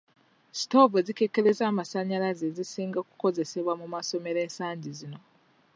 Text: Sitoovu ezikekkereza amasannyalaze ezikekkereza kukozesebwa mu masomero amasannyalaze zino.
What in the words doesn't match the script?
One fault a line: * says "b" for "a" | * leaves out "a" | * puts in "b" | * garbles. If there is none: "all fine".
* says "zisinga" for "ezikekkereza"
* says "ensangi" for "amasannyalaze"